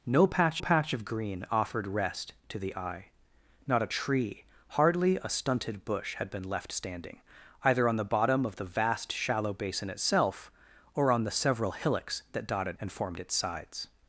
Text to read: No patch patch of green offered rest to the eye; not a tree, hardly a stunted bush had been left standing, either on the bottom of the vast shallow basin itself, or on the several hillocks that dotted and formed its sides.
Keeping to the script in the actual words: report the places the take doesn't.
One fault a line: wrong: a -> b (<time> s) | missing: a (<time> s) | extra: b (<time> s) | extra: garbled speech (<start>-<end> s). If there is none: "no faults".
no faults